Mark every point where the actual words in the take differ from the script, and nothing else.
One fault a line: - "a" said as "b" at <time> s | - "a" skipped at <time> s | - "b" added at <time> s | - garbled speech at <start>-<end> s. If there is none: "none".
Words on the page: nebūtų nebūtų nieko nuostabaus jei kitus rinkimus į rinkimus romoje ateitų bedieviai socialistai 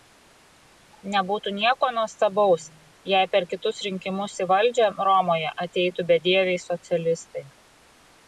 - "nebūtų" skipped at 1.5 s
- "per" added at 3.4 s
- "rinkimus" said as "valdžią" at 4.5 s